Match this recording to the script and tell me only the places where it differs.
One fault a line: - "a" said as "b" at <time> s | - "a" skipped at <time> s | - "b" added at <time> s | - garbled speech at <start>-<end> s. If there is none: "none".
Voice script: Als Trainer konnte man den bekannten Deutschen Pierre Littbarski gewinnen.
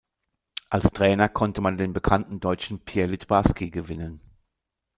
none